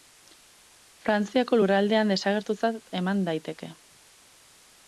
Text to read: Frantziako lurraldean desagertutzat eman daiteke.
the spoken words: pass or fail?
pass